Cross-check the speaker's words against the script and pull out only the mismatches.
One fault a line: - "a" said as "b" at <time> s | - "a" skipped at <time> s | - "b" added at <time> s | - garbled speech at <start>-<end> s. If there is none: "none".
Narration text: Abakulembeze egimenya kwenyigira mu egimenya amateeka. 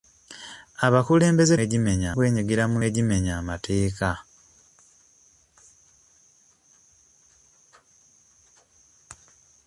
none